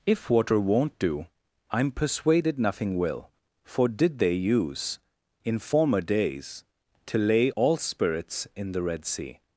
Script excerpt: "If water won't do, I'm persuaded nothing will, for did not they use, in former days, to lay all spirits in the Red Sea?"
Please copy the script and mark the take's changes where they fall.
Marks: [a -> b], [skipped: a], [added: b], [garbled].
"If water won't do, I'm persuaded nothing will, for did [skipped: not] they use, in former days, to lay all spirits in the Red Sea?"